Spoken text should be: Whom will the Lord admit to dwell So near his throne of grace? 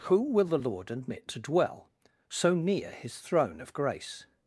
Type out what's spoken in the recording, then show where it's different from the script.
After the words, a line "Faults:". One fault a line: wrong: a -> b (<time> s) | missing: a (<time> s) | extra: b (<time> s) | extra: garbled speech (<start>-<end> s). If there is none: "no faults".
Who will the Lord admit to dwell So near his throne of grace?
Faults:
wrong: Whom -> Who (0.1 s)